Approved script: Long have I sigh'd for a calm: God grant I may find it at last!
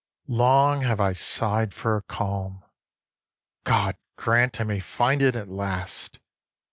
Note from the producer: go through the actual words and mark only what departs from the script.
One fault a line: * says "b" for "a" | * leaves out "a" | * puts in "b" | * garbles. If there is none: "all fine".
all fine